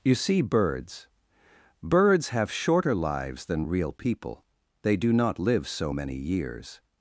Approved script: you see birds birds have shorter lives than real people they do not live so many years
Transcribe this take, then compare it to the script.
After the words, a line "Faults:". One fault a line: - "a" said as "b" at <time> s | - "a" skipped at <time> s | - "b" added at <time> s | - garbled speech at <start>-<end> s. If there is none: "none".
you see birds birds have shorter lives than real people they do not live so many years
Faults:
none